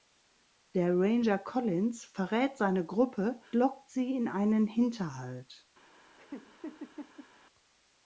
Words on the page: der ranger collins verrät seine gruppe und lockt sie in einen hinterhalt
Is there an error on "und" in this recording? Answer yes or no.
yes